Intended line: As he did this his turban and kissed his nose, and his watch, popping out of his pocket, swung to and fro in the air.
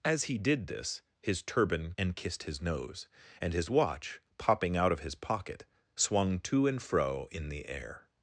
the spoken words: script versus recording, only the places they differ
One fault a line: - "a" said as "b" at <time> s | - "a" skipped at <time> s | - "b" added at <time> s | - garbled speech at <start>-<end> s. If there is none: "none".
none